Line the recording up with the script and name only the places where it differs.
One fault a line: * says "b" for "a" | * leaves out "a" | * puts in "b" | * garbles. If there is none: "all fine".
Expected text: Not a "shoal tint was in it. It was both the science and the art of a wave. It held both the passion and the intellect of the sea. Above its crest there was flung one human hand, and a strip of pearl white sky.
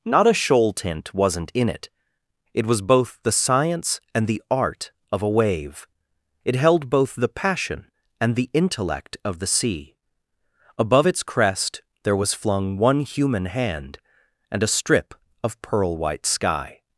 * says "wasn't" for "was"